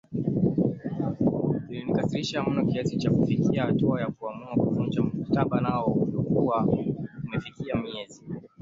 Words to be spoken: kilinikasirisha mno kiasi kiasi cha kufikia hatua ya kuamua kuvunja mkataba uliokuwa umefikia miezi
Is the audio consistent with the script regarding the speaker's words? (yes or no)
no